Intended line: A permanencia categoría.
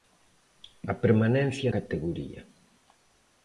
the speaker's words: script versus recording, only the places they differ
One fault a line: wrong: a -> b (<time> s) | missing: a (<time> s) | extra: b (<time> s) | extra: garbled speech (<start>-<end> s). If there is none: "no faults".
no faults